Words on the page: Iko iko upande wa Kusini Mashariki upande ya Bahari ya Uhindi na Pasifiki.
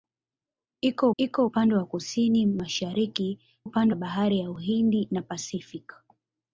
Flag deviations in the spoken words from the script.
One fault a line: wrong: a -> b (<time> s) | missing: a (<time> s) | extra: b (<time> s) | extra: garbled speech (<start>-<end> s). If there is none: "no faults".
no faults